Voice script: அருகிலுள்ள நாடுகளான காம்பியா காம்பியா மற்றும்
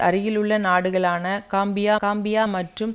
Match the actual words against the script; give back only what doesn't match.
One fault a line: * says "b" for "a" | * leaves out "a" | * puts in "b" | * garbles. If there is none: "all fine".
all fine